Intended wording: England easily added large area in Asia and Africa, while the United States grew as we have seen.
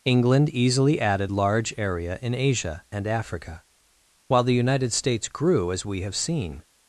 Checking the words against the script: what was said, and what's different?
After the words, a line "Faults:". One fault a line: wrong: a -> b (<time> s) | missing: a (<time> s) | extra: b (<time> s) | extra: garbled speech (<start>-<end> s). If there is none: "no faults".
England easily added large area in Asia and Africa, while the United States grew as we have seen.
Faults:
no faults